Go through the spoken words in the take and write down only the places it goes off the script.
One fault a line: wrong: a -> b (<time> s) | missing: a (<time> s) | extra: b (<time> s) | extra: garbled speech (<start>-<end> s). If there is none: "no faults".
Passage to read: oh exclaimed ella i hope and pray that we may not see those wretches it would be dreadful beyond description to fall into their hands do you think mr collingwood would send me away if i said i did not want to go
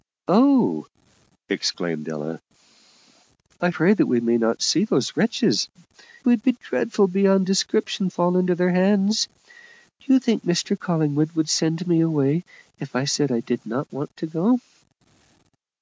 missing: hope and (3.7 s)
missing: it (5.7 s)
missing: to (8.1 s)